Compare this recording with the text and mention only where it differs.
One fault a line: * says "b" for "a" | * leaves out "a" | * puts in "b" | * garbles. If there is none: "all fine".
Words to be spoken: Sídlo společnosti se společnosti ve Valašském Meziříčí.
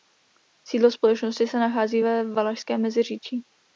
* says "nachází" for "společnosti"